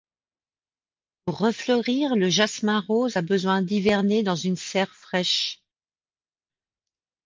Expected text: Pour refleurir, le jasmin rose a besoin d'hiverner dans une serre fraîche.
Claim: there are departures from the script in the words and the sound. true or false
false